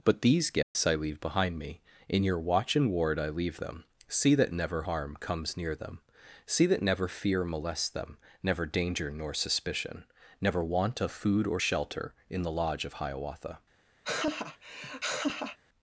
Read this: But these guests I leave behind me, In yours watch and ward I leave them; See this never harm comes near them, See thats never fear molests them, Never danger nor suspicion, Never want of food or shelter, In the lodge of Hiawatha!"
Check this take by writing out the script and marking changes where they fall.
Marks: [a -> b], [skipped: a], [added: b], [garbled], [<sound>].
But these guests [dropout] I leave behind me, In [yours -> your] watch and ward I leave them; See [this -> that] never harm comes near them, See [thats -> that] never fear molests them, Never danger nor suspicion, Never want of food or shelter, In the lodge of Hiawatha!" [laugh]